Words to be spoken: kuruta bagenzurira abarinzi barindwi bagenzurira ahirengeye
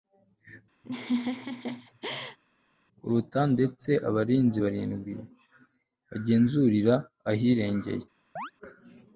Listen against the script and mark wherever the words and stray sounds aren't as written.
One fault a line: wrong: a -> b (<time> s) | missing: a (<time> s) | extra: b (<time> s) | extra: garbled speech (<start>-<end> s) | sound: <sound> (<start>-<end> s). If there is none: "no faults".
sound: laugh (0.8-2.4 s)
wrong: bagenzurira -> ndetse (3.5 s)
sound: chirp (8.4-8.5 s)